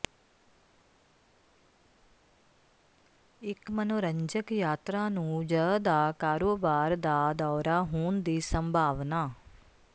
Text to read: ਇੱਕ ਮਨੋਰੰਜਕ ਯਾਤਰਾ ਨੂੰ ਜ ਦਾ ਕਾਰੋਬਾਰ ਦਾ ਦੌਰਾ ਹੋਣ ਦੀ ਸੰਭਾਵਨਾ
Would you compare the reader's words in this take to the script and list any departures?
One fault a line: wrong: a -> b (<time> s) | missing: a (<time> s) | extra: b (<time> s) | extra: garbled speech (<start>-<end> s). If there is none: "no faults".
no faults